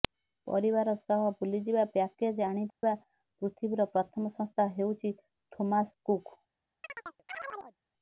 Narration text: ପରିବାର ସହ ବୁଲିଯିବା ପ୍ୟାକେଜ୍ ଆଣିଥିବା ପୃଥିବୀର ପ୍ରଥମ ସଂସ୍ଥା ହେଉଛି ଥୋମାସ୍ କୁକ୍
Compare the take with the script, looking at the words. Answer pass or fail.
pass